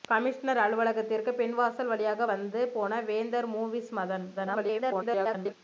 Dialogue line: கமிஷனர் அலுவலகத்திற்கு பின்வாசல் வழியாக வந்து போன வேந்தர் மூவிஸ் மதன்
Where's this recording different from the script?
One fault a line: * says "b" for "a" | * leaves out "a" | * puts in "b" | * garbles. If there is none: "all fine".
* garbles